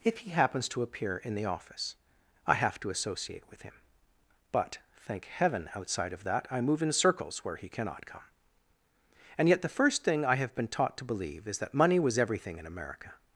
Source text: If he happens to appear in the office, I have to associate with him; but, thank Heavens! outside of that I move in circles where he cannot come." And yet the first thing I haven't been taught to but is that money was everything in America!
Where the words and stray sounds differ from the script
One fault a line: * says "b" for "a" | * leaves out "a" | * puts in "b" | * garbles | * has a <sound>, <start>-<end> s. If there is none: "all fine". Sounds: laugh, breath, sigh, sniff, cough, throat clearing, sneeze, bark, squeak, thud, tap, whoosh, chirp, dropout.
* says "Heaven" for "Heavens"
* says "have" for "haven't"
* says "believe" for "but"